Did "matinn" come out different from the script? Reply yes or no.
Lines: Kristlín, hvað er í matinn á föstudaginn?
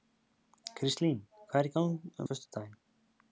yes